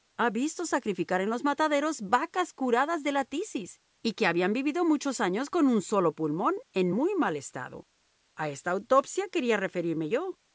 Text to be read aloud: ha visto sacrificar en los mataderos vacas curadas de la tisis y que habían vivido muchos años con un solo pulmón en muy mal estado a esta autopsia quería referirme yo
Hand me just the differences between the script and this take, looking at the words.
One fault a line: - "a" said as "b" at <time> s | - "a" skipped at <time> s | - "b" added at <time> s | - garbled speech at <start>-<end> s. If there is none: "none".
none